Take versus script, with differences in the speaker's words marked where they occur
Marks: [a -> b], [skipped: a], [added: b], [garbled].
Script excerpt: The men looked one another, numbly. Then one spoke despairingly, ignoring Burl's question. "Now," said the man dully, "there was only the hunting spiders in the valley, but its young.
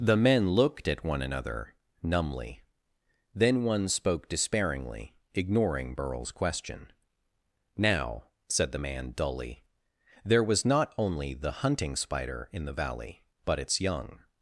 The men looked [added: at] one another, numbly. Then one spoke despairingly, ignoring Burl's question. "Now," said the man dully, "there was [added: not] only the hunting [spiders -> spider] in the valley, but its young.